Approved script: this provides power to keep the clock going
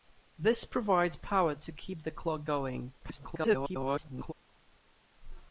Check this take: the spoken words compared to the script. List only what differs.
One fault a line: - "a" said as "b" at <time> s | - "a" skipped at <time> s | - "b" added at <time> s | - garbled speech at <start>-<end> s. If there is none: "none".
- garbled speech at 3.0-4.3 s